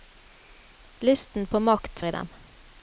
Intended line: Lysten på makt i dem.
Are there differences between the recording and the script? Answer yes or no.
no